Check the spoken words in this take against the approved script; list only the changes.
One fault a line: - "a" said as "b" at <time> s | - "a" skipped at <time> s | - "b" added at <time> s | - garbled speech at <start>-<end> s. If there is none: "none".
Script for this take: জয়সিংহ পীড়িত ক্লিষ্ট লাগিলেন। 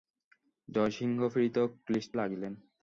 none